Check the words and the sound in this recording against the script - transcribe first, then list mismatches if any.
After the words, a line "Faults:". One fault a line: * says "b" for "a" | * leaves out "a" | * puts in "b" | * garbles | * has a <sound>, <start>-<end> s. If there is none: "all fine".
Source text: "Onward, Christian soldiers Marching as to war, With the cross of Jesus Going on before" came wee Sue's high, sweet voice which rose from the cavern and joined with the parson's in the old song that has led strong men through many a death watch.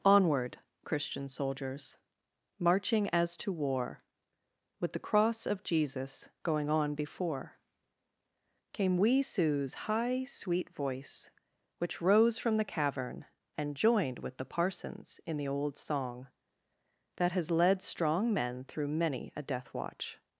"Onward, Christian soldiers Marching as to war, With the cross of Jesus Going on before" came wee Sue's high, sweet voice which rose from the cavern and joined with the parson's in the old song that has led strong men through many a death watch.
Faults:
all fine